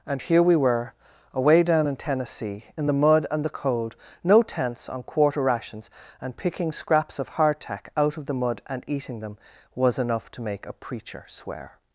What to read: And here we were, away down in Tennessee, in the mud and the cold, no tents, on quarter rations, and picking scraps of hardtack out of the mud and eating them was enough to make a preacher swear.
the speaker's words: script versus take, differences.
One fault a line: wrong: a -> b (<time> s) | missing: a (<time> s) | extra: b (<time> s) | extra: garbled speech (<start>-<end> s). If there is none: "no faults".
no faults